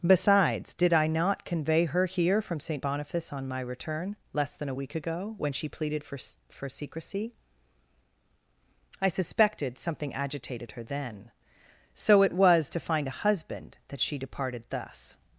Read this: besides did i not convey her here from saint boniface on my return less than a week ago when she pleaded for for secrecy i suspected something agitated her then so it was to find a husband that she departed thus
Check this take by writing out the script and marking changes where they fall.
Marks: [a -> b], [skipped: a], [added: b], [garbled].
besides did i not convey her here from saint boniface on my return less than a week ago when she pleaded for for secrecy i suspected something agitated her then so it was to find a husband that she departed thus